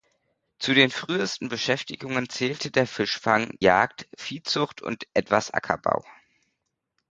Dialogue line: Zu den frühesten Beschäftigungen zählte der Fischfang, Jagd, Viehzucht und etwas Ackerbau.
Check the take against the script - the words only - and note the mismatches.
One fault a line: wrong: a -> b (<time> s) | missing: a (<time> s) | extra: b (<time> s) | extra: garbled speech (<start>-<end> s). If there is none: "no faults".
no faults